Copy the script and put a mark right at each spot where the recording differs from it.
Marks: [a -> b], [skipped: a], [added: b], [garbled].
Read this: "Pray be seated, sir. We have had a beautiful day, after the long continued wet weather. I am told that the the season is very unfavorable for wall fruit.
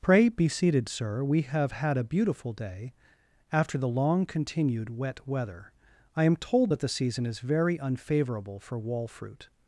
"Pray be seated, sir. We have had a beautiful day, after the long continued wet weather. I am told that the [skipped: the] season is very unfavorable for wall fruit.